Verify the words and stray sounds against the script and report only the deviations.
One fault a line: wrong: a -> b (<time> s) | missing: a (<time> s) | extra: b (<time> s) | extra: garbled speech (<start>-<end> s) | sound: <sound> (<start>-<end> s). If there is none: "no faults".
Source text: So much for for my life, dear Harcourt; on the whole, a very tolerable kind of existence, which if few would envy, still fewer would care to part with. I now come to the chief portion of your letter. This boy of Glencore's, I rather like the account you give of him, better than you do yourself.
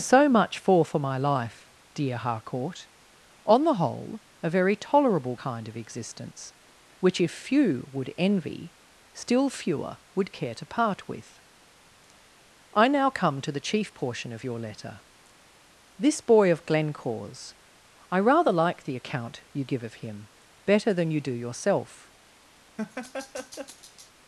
sound: laugh (22.8-24.1 s)